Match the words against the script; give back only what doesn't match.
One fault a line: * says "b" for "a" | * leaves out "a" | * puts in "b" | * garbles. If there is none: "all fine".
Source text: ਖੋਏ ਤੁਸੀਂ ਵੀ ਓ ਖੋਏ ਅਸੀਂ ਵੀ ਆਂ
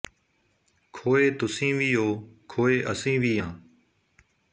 all fine